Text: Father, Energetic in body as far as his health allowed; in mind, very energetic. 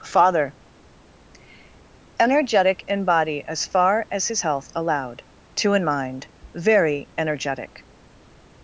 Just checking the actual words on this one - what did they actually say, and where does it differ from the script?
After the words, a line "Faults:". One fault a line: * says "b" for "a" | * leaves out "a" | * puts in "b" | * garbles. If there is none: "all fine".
Father, Energetic in body as far as his health allowed; two in mind, very energetic.
Faults:
* puts in "two"